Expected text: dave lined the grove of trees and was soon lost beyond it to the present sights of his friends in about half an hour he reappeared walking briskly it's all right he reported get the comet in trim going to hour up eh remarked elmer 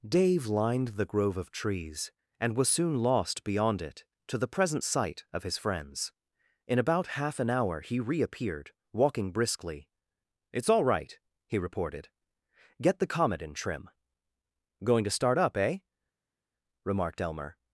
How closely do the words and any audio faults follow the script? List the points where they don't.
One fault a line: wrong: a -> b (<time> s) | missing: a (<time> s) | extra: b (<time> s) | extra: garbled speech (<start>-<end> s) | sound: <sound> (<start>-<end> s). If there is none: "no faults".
wrong: sights -> sight (4.8 s)
wrong: hour -> start (15.2 s)